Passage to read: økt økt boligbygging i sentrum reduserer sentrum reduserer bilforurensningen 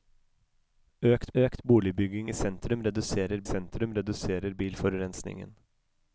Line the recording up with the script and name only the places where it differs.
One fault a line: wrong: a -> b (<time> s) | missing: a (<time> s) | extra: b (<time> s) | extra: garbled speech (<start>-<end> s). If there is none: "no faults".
no faults